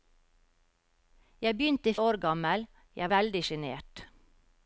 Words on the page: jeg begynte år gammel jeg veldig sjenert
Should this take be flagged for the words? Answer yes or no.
no